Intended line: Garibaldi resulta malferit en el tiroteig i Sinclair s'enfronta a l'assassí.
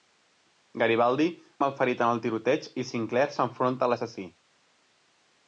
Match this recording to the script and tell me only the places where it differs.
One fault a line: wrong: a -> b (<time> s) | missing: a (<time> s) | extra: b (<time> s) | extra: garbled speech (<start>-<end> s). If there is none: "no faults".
missing: resulta (1.3 s)